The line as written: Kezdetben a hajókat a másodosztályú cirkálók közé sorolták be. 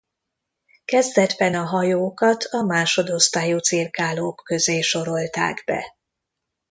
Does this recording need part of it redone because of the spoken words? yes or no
no